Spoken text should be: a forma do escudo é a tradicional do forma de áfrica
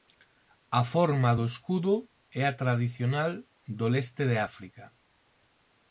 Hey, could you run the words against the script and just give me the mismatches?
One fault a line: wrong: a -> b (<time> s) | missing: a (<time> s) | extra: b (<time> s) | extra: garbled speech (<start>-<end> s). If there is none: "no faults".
wrong: forma -> leste (3.9 s)